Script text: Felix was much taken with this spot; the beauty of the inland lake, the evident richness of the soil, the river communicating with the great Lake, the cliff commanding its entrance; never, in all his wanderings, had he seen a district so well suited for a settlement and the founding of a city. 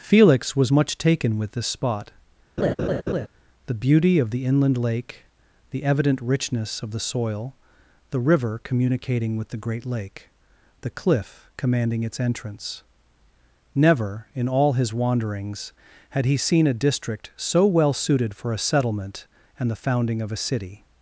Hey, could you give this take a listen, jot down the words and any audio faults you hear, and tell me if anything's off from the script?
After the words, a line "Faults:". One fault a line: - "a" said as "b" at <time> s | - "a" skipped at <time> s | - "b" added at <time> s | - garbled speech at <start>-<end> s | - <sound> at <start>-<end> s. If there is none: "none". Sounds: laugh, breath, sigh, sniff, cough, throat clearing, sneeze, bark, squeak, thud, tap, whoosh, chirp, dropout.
Felix was much taken with this spot; the beauty of the inland lake, the evident richness of the soil, the river communicating with the great Lake, the cliff commanding its entrance; never, in all his wanderings, had he seen a district so well suited for a settlement and the founding of a city.
Faults:
- laugh at 2.6-3.3 s